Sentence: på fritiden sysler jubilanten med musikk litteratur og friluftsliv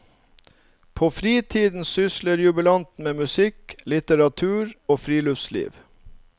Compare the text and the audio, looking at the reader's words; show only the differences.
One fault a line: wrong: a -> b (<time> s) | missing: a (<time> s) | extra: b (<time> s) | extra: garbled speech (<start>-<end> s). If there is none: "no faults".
no faults